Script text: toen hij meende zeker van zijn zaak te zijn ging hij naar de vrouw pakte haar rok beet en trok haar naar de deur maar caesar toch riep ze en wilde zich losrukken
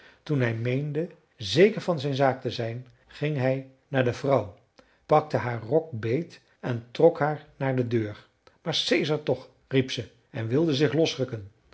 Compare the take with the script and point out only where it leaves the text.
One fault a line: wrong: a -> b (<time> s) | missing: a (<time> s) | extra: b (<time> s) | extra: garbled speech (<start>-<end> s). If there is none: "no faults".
no faults